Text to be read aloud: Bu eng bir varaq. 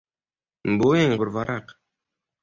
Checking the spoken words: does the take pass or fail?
pass